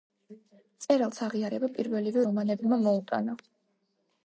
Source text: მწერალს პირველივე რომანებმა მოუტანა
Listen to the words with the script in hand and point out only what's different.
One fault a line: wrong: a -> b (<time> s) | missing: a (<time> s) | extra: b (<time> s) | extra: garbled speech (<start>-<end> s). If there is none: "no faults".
extra: აღიარება (1.2 s)